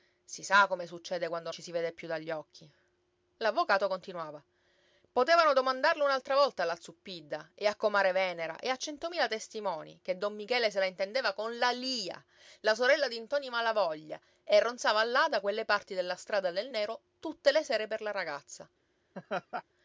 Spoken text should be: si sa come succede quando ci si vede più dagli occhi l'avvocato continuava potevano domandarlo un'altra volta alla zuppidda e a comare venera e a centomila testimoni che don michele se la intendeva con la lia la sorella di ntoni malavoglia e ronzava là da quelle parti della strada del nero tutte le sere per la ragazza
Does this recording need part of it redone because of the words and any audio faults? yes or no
yes